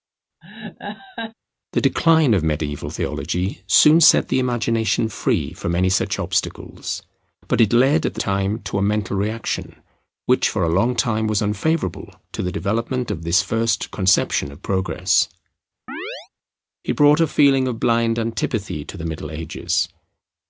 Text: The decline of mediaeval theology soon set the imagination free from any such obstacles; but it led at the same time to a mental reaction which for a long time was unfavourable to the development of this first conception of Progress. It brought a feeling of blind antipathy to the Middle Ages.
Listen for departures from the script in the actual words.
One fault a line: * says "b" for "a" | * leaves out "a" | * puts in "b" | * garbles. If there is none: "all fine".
* leaves out "same"